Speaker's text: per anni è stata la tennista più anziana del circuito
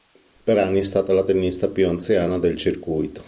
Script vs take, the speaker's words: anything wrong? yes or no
no